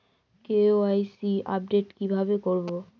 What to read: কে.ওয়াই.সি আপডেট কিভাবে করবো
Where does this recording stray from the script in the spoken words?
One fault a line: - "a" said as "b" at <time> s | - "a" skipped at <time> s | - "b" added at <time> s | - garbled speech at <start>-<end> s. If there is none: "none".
none